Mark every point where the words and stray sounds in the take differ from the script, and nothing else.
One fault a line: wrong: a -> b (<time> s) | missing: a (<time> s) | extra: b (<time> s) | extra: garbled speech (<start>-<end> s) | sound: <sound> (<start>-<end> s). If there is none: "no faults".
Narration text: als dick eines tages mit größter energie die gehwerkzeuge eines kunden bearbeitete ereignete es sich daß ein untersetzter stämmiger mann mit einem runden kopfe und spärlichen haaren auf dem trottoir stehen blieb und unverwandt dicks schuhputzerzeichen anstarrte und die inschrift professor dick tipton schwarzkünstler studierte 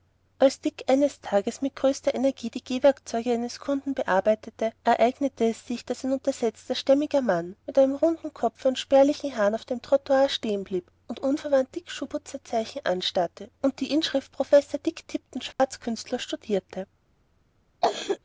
sound: dropout (15.5-15.6 s)
sound: cough (17.8-18.2 s)